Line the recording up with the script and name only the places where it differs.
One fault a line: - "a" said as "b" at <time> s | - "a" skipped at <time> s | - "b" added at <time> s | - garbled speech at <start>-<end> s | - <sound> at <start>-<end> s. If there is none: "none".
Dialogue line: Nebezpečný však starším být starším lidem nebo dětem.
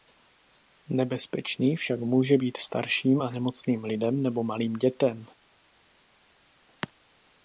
- "starším" said as "může" at 2.0 s
- "a nemocným" added at 3.2 s
- "malým" added at 4.4 s